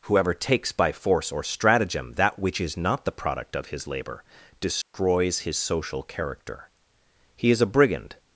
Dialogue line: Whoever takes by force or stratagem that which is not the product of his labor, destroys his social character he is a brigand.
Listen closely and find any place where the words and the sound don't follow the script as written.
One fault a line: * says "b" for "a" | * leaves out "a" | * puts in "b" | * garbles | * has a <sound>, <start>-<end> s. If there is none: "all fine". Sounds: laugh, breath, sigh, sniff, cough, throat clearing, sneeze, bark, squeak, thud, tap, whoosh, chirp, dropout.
* has a dropout, 4.8-4.9 s